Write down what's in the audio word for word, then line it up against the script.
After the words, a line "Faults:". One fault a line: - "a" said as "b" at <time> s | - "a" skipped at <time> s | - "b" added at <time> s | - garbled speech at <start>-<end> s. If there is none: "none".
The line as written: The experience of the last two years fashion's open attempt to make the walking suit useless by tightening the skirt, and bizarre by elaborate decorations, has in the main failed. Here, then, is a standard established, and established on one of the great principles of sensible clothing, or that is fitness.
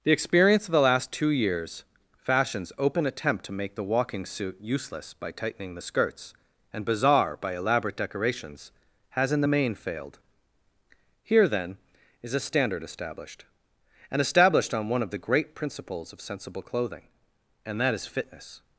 The experience of the last two years fashion's open attempt to make the walking suit useless by tightening the skirts, and bizarre by elaborate decorations, has in the main failed. Here, then, is a standard established, and established on one of the great principles of sensible clothing, and that is fitness.
Faults:
- "skirt" said as "skirts" at 5.8 s
- "or" said as "and" at 17.6 s